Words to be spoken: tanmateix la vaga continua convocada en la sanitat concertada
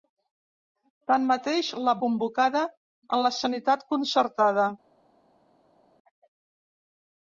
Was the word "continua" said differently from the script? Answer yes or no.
yes